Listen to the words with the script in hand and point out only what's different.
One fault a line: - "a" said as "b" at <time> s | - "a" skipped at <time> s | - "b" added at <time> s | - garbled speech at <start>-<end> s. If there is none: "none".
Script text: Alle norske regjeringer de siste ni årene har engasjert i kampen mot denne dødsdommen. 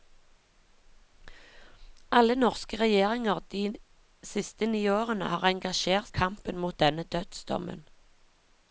none